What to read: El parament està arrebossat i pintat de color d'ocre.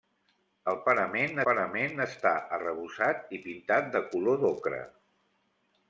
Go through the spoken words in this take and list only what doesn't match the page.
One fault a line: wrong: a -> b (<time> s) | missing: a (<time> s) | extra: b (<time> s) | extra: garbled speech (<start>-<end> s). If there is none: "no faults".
extra: parament (1.4 s)